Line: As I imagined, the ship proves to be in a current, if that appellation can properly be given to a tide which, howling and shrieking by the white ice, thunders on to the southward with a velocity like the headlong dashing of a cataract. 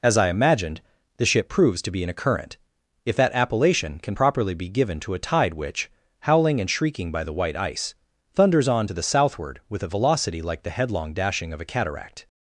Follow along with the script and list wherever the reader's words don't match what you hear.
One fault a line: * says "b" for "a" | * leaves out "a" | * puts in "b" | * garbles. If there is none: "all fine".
all fine